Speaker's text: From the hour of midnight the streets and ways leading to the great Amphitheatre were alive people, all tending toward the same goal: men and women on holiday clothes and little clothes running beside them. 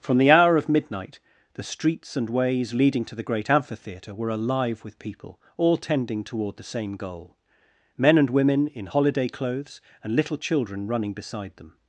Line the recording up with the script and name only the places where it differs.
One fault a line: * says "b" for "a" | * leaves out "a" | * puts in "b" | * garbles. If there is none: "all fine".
* puts in "with"
* says "in" for "on"
* says "children" for "clothes"